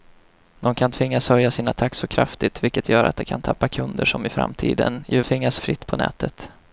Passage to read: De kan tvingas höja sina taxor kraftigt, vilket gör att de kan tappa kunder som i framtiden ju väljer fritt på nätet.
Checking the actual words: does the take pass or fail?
fail